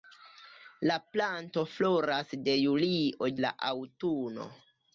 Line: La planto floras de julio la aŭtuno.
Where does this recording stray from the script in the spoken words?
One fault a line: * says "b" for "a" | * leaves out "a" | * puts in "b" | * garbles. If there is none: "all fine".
all fine